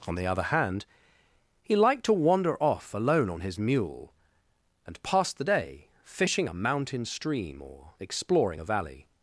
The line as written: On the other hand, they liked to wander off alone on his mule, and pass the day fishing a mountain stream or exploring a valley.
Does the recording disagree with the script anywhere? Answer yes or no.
yes